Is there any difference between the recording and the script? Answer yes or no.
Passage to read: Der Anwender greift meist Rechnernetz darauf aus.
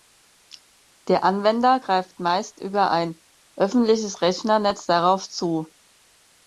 yes